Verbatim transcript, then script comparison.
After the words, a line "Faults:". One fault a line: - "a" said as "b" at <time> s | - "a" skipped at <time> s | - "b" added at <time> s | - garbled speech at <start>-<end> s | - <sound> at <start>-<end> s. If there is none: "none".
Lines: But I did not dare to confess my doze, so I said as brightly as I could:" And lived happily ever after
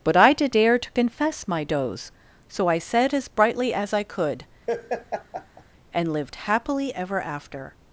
But I did dare to confess my doze, so I said as brightly as I could:" And lived happily ever after
Faults:
- "not" skipped at 0.6 s
- laugh at 4.7-5.6 s